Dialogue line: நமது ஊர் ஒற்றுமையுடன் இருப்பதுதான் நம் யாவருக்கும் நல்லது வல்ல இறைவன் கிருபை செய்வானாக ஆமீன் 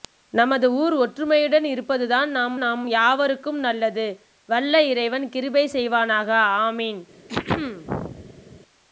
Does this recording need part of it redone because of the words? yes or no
yes